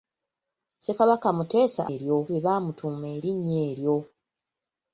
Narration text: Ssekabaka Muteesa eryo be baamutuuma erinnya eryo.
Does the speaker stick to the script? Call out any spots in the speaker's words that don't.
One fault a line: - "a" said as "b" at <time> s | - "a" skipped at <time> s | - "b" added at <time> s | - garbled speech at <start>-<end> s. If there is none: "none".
none